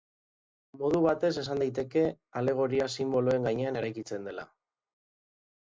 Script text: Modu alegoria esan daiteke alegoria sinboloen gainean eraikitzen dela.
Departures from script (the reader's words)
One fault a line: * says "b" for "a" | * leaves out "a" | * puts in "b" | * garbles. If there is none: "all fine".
* says "batez" for "alegoria"